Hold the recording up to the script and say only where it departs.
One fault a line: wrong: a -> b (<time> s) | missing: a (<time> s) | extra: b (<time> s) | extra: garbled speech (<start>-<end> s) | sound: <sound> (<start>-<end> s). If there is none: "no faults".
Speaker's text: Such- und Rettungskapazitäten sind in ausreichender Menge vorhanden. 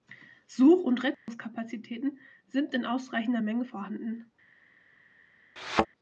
sound: dropout (1.1-1.3 s)
sound: thud (5.6-5.9 s)